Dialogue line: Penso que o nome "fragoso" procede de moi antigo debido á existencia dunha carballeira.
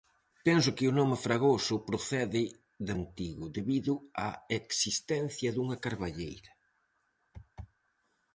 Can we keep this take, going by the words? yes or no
no